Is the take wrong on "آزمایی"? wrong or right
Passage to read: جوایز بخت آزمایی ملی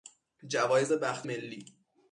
wrong